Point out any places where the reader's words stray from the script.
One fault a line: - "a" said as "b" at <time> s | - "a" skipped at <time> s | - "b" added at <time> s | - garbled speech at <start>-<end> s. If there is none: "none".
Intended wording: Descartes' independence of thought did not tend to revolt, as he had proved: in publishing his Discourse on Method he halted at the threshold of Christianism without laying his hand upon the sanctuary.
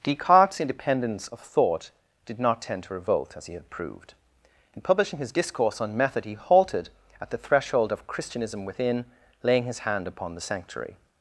- "without" said as "within" at 8.6 s